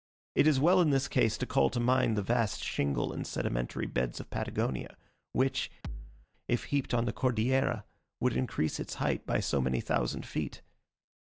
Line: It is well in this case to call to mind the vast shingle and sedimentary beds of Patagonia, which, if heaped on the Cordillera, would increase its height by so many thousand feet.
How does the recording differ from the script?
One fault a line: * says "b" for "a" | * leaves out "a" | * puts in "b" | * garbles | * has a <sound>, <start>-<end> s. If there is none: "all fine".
* has a thud, 5.8-6.3 s